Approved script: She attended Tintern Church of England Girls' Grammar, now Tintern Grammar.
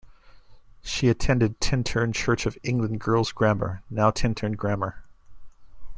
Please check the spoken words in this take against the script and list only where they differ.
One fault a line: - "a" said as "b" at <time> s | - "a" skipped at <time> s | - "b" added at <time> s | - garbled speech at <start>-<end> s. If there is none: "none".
none